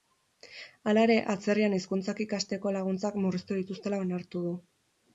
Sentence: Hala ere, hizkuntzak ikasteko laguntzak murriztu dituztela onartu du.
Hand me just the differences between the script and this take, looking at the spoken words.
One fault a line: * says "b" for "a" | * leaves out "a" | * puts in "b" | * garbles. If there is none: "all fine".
* puts in "atzerrian"